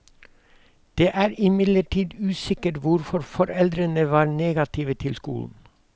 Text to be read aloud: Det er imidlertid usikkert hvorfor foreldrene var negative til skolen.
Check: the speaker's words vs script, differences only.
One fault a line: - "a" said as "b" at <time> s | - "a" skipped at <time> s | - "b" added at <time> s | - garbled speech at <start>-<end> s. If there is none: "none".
none